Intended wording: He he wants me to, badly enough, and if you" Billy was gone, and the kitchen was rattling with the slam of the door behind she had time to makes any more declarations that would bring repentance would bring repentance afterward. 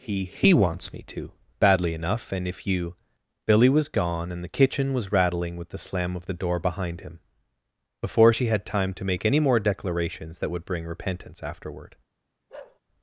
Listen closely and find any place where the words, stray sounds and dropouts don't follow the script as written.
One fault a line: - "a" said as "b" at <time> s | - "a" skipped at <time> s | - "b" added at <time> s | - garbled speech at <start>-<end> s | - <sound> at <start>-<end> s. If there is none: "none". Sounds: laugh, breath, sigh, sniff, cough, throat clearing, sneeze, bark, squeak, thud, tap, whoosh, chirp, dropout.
- "him before" added at 7.0 s
- "makes" said as "make" at 9.0 s
- "would bring repentance" skipped at 11.4 s
- bark at 12.5-12.8 s